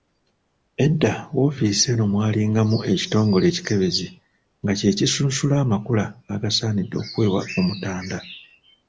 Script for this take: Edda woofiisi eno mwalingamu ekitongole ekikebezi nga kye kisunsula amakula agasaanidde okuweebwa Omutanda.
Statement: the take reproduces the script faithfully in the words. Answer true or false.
true